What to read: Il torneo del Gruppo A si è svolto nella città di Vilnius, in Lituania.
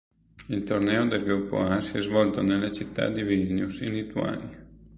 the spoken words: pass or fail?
pass